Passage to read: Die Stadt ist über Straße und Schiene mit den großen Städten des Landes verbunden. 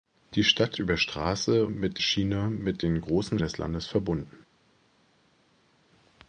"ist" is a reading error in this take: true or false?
true